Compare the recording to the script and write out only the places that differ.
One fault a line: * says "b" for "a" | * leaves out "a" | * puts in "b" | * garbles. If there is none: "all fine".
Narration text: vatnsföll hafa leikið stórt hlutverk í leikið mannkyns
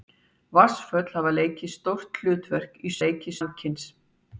all fine